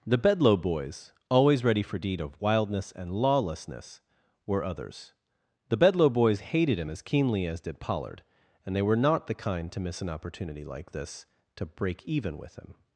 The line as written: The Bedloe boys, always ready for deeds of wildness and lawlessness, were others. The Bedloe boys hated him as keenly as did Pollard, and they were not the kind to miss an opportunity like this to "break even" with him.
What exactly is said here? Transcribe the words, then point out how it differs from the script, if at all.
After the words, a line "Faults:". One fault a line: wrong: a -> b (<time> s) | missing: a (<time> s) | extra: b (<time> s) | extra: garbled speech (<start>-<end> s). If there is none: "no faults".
The Bedloe boys, always ready for deed of wildness and lawlessness, were others. The Bedloe boys hated him as keenly as did Pollard, and they were not the kind to miss an opportunity like this to "break even" with him.
Faults:
wrong: deeds -> deed (2.0 s)